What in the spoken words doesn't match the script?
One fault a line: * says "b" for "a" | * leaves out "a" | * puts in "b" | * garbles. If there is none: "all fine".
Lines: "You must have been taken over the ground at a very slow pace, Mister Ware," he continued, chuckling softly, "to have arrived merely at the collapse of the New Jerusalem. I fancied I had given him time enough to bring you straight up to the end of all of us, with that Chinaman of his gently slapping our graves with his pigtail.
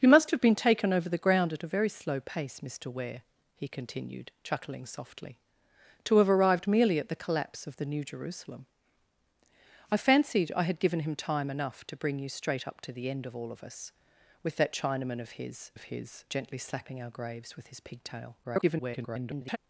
* puts in "of his"
* garbles